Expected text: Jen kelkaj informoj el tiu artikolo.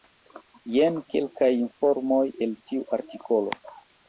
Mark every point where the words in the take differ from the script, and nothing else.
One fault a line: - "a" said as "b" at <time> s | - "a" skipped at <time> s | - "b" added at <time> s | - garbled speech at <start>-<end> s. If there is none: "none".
none